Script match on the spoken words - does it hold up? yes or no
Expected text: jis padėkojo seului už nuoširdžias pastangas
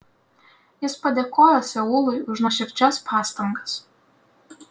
yes